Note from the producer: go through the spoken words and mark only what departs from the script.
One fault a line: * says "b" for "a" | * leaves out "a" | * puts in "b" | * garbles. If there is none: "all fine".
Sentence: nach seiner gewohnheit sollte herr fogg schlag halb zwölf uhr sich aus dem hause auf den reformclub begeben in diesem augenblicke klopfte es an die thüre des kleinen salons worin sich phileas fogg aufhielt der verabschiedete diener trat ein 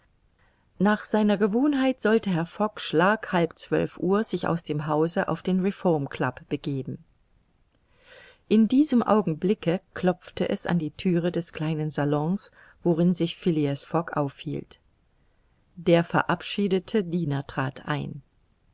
all fine